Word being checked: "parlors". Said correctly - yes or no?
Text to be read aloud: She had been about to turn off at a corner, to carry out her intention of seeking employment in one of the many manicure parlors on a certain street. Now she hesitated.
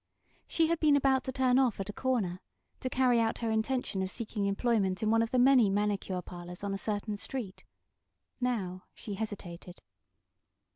yes